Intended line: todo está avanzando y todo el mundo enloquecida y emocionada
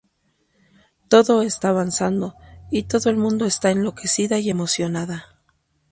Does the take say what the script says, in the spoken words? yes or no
no